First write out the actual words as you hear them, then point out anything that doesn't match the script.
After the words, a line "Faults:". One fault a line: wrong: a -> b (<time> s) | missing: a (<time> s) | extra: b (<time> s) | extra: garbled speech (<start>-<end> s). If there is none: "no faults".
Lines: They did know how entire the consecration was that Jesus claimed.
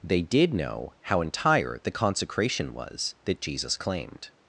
They did know how entire the consecration was that Jesus claimed.
Faults:
no faults